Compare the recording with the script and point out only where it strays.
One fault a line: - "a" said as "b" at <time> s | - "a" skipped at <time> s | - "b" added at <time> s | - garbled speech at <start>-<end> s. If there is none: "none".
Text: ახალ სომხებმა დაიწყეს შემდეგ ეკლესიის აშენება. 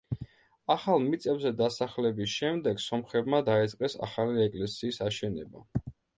- "მიწებზე დასახლების შემდეგ" added at 1.1 s
- "შემდეგ" said as "ახალი" at 4.1 s